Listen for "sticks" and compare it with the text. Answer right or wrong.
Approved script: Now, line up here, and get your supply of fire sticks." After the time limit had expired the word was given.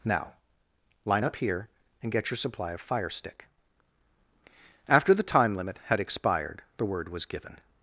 wrong